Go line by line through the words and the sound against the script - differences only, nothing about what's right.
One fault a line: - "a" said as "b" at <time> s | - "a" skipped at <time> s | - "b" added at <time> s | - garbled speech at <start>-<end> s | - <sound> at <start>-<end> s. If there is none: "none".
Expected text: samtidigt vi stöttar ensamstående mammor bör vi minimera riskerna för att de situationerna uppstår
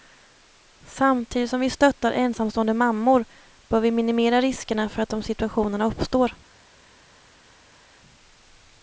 - "som" added at 1.5 s